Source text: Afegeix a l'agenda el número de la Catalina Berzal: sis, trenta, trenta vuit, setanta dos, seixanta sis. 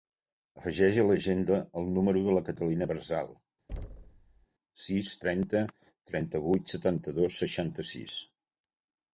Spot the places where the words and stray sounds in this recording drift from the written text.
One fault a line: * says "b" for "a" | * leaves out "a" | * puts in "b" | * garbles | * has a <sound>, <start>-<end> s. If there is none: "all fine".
* has a thud, 3.7-4.5 s